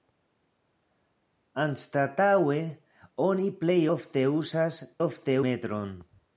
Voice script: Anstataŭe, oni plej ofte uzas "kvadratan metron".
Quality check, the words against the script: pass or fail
fail